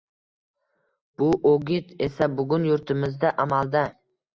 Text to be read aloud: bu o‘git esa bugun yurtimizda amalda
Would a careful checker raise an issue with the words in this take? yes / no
no